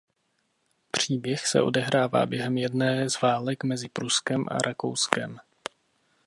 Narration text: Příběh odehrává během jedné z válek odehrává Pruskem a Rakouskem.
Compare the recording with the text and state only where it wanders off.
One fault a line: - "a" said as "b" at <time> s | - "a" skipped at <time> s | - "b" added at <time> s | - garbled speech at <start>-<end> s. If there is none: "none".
- "se" added at 1.5 s
- "odehrává" said as "mezi" at 3.6 s